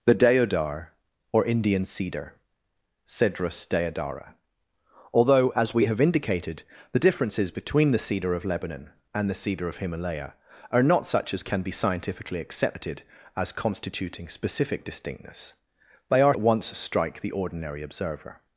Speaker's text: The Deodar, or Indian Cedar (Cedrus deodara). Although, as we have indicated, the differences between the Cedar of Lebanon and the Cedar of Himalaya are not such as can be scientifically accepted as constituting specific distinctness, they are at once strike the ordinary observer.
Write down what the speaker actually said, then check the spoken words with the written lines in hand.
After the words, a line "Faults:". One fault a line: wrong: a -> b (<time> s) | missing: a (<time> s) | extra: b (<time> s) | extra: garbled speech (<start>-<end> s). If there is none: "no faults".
The Deodar, or Indian Cedar (Cedrus deodara). Although, as we have indicated, the differences between the Cedar of Lebanon and the Cedar of Himalaya are not such as can be scientifically accepted as constituting specific distinctness, they are at once strike the ordinary observer.
Faults:
no faults